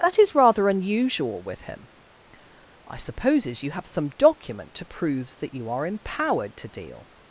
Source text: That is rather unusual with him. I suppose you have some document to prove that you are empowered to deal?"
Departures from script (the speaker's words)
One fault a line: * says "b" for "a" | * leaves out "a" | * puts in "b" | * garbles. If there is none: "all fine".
* says "supposes" for "suppose"
* says "proves" for "prove"